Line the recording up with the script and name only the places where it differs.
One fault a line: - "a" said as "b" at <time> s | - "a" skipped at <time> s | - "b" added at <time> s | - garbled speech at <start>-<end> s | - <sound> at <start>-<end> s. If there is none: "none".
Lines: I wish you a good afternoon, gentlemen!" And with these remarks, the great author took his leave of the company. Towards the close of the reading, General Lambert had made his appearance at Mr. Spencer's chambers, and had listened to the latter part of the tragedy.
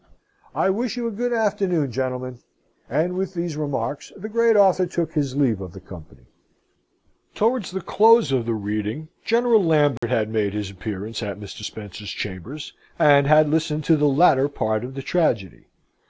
- dropout at 10.0-10.0 s